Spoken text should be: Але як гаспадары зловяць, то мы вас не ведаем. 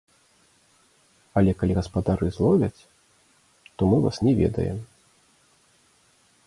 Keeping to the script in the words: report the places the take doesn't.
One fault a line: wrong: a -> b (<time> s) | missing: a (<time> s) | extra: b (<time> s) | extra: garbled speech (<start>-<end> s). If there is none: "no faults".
wrong: як -> калі (1.6 s)